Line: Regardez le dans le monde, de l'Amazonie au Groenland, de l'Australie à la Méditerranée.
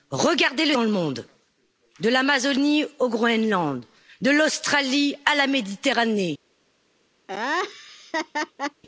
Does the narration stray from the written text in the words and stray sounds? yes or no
yes